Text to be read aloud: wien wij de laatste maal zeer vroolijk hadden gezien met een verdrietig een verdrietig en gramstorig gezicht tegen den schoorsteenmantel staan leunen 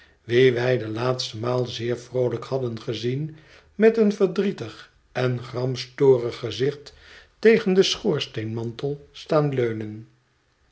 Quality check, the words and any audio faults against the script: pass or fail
fail